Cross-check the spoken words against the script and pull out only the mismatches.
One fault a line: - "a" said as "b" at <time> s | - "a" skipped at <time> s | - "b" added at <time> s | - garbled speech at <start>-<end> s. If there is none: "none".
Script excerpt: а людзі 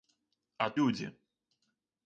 none